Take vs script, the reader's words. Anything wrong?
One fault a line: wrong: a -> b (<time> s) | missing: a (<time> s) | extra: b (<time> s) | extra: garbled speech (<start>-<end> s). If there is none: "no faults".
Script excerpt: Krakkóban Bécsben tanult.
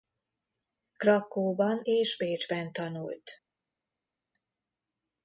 extra: és (1.8 s)